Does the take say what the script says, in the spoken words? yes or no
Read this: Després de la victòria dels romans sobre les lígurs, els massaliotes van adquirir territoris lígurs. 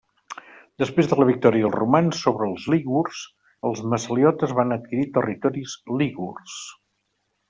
no